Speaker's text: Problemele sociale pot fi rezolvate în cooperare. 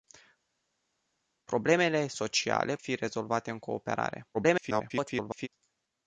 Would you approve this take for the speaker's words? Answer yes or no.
no